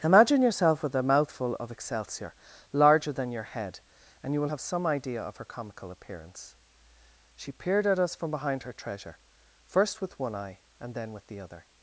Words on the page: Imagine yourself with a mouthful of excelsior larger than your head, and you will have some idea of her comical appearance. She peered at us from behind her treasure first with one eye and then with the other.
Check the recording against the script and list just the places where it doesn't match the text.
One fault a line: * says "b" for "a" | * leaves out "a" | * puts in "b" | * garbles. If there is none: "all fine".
all fine